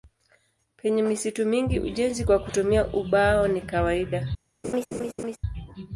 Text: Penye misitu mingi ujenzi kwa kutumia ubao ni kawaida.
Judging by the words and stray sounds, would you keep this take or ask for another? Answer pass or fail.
fail